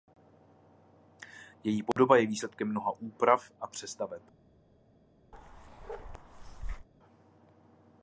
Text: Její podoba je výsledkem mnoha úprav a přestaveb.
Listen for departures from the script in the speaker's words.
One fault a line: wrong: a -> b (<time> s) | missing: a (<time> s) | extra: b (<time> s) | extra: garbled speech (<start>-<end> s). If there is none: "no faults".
no faults